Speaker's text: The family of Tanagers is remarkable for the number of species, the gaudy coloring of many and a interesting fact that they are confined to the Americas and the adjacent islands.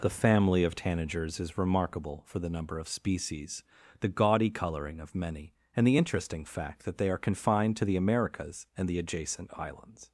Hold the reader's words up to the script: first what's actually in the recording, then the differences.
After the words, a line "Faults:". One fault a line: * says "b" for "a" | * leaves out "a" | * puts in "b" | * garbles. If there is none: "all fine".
The family of Tanagers is remarkable for the number of species, the gaudy coloring of many and the interesting fact that they are confined to the Americas and the adjacent islands.
Faults:
* says "the" for "a"